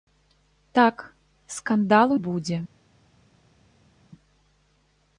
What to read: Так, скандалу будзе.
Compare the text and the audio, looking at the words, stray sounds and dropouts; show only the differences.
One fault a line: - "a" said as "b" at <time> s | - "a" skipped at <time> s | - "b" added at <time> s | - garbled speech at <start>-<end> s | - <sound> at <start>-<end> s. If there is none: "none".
none